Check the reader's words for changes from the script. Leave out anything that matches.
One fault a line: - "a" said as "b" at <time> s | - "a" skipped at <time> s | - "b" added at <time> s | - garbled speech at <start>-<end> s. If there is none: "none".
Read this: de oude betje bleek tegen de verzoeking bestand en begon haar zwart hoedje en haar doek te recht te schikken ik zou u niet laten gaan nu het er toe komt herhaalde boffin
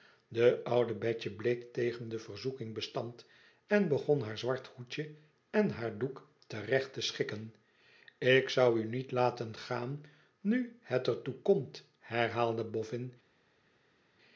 none